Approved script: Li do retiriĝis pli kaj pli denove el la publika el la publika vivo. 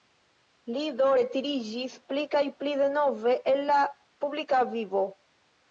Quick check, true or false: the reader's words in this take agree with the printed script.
false